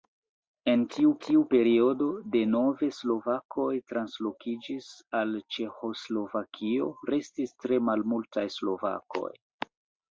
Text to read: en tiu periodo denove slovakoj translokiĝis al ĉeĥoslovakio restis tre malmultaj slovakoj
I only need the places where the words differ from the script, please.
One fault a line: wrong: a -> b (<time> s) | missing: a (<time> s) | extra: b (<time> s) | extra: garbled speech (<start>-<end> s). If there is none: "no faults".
extra: tiu (1.2 s)